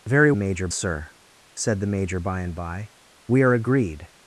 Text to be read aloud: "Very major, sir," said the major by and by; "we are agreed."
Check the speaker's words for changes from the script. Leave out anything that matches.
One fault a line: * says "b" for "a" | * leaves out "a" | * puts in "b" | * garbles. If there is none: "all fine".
all fine